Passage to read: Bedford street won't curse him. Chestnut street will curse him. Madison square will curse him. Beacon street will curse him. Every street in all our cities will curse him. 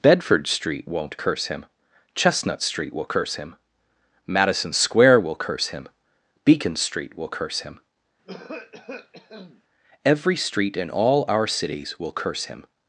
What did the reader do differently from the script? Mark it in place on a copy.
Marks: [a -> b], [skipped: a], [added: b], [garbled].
Bedford street won't curse him. Chestnut street will curse him. Madison square will curse him. Beacon street will curse him. Every street in all our cities will curse him.